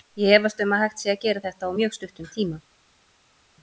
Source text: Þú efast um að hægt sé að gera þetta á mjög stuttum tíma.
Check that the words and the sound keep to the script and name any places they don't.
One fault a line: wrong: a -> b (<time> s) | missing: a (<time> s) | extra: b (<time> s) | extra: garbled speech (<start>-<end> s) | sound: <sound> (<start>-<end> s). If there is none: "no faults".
wrong: Þú -> Ég (0.2 s)